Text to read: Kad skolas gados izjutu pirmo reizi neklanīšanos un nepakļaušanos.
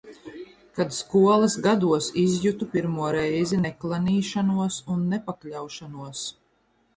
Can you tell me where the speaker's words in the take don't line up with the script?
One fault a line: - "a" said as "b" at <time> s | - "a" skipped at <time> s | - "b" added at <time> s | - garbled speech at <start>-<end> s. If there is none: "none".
none